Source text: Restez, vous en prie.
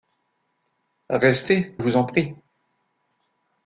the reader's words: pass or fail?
pass